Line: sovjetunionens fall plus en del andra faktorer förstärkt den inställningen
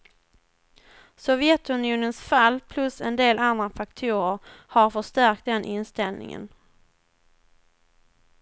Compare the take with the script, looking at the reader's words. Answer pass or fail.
fail